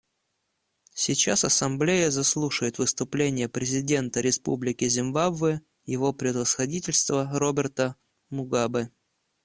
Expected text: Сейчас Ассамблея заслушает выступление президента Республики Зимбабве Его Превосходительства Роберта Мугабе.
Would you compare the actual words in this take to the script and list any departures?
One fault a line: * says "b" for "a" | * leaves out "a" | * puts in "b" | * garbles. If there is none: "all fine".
all fine